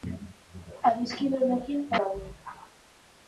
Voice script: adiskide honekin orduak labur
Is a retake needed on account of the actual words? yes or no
yes